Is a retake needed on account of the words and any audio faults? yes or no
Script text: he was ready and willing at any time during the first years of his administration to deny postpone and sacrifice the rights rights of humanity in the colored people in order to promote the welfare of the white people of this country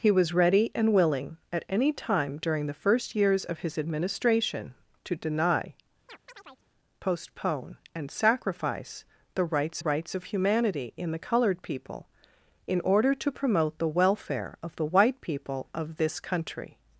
yes